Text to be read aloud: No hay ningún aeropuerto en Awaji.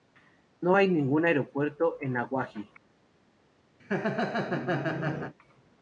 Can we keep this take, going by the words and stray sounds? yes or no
no